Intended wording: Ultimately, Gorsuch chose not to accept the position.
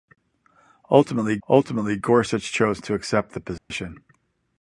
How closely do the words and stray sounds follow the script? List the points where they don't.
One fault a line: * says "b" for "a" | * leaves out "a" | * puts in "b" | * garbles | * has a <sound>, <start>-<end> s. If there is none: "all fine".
* puts in "ultimately"
* leaves out "not"
* has a dropout, 3.6-3.7 s